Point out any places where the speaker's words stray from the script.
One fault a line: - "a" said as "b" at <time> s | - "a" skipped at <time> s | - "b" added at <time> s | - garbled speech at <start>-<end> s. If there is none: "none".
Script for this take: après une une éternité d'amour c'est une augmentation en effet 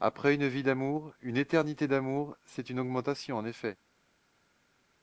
- "vie d'amour" added at 0.5 s